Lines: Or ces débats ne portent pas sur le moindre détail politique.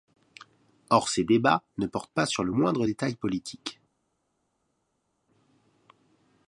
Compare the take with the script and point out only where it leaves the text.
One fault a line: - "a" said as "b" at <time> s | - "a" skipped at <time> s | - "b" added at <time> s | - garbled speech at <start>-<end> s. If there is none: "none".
none